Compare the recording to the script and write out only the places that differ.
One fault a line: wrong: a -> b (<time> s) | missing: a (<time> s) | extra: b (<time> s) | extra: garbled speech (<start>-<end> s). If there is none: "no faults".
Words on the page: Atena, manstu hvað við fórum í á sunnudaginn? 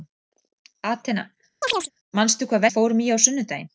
no faults